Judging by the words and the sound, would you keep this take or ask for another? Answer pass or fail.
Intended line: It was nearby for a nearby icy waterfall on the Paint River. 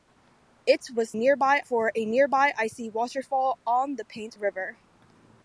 pass